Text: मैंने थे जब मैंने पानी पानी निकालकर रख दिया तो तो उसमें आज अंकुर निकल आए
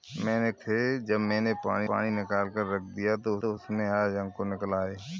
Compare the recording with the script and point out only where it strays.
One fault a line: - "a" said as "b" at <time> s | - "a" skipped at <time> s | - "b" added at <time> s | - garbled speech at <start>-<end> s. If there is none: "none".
none